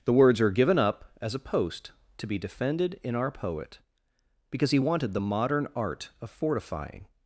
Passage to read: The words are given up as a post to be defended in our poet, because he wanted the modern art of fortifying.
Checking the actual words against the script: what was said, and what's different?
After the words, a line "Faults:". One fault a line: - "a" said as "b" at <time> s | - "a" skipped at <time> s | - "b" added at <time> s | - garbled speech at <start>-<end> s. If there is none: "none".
The words are given up as a post to be defended in our poet, because he wanted the modern art of fortifying.
Faults:
none